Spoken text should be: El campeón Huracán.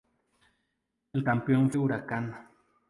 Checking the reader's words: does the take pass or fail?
pass